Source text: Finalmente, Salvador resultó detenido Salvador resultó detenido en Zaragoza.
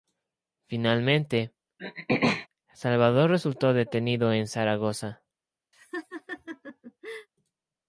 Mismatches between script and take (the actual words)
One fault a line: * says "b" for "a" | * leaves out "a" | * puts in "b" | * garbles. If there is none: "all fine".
* leaves out "Salvador resultó detenido"